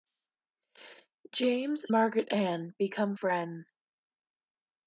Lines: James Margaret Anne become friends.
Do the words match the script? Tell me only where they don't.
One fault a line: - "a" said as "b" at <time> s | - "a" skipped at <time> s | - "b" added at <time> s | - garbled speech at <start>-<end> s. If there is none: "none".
none